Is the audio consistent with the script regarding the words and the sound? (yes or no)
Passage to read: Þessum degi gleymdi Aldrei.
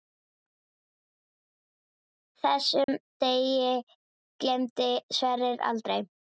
no